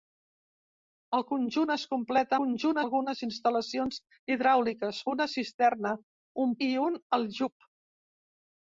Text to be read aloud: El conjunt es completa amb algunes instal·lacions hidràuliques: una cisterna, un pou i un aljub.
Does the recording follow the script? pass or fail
fail